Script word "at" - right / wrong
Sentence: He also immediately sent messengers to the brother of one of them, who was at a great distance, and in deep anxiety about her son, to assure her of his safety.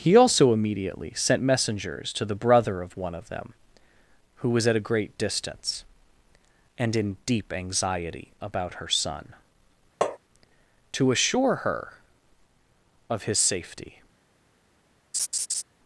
right